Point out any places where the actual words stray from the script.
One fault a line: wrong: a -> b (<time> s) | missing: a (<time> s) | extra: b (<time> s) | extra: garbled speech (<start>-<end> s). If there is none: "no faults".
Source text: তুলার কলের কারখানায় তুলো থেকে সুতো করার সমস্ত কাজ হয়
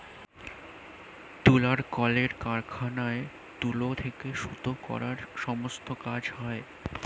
no faults